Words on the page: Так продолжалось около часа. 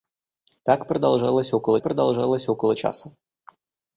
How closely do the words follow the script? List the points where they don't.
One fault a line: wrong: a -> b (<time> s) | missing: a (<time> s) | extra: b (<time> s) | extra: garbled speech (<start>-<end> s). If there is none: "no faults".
extra: продолжалось около (1.8 s)